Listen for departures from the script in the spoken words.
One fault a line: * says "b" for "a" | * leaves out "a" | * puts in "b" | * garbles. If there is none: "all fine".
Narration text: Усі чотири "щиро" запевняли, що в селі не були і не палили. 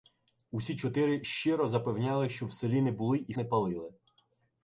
all fine